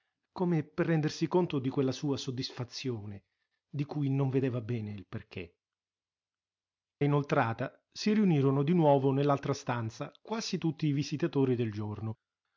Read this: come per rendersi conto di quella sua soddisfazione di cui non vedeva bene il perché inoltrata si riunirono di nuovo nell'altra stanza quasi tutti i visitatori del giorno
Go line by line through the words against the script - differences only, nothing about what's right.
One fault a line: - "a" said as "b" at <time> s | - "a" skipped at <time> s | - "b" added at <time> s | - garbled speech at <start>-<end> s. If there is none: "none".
none